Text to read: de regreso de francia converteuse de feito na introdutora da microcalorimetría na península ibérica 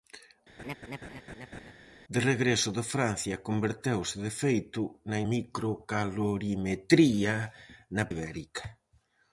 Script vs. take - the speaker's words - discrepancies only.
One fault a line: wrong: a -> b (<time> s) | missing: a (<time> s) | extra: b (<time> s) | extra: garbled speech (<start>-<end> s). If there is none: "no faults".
missing: introdutora da (5.2 s)
missing: península (8.0 s)